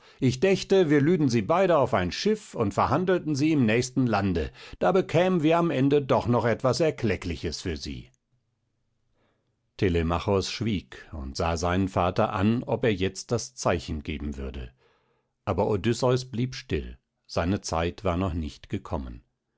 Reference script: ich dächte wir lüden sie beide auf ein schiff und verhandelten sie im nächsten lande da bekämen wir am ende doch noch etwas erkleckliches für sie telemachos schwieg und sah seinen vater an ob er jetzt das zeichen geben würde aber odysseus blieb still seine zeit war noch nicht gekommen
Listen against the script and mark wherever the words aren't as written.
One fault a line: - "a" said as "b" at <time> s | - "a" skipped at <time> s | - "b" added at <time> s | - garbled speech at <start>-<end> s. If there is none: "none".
none